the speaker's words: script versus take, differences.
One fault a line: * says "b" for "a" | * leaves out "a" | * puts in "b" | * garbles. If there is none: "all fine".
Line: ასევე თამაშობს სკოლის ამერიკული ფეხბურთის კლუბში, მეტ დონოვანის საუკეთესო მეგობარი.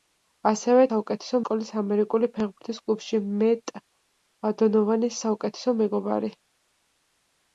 * says "საუკეთესო" for "თამაშობს"